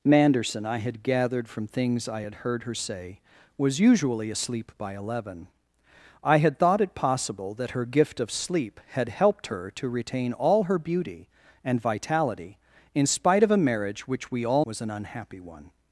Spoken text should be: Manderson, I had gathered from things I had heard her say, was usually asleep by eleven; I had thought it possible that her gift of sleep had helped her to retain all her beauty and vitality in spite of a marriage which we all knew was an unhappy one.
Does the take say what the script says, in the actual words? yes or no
no